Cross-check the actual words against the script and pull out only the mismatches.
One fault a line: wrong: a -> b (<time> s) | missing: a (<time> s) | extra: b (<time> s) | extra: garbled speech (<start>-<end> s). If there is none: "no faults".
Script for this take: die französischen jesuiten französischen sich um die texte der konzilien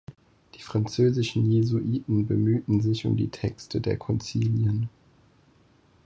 wrong: französischen -> bemühten (2.2 s)